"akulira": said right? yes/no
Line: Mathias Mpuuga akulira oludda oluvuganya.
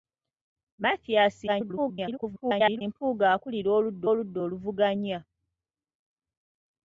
yes